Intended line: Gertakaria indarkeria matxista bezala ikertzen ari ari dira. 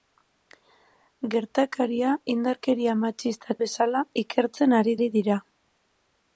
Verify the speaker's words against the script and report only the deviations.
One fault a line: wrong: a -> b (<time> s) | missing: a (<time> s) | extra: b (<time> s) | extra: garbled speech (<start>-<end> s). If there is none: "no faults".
no faults